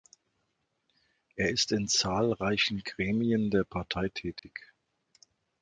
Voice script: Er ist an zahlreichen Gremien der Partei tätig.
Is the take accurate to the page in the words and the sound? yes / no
no